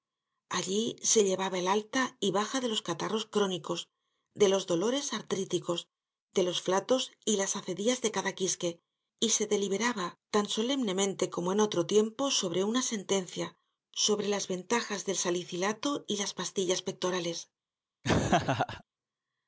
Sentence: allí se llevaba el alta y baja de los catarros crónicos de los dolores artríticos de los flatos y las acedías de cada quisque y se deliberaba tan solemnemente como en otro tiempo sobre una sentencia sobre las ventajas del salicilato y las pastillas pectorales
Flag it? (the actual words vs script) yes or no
no